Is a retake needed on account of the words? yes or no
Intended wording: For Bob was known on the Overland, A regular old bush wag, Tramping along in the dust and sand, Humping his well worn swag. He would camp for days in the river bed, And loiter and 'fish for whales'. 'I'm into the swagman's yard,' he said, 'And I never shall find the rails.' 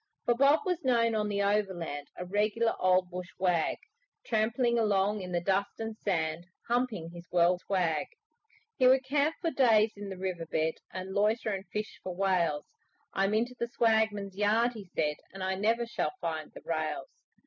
yes